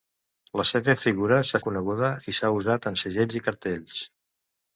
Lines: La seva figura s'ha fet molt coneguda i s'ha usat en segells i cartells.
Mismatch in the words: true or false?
true